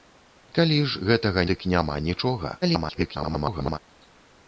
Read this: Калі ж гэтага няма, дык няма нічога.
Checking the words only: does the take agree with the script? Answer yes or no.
no